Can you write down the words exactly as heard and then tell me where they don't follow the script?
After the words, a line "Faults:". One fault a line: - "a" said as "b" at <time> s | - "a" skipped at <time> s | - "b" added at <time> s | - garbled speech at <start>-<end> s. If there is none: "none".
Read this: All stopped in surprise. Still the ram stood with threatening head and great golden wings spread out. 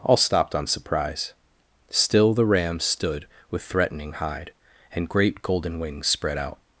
All stopped on surprise. Still the ram stood with threatening hide and great golden wings spread out.
Faults:
- "in" said as "on" at 0.6 s
- "head" said as "hide" at 4.1 s